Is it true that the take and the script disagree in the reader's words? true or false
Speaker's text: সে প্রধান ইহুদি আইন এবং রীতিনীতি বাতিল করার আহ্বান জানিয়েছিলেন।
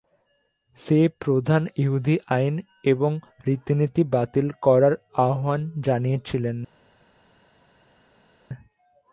false